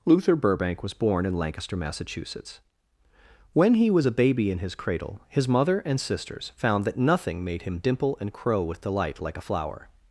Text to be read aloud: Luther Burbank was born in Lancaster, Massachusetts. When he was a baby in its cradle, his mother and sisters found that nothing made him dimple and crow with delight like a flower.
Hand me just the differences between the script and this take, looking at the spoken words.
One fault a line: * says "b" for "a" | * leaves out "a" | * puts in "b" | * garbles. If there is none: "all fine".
* says "his" for "its"